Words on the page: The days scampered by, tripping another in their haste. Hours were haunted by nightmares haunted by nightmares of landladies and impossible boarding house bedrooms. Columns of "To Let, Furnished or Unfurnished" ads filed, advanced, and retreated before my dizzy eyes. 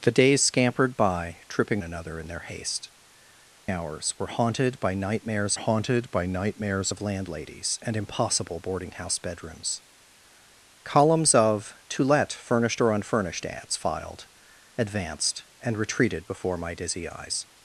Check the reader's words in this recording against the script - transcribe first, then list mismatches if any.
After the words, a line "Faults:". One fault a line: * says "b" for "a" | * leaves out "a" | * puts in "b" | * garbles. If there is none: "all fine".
The days scampered by, tripping another in their haste. Hours were haunted by nightmares haunted by nightmares of landladies and impossible boarding house bedrooms. Columns of "To Let, Furnished or Unfurnished" ads filed, advanced, and retreated before my dizzy eyes.
Faults:
all fine